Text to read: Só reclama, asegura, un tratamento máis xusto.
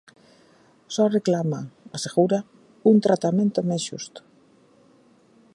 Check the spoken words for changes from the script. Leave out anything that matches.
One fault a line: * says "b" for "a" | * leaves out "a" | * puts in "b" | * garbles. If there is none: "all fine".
all fine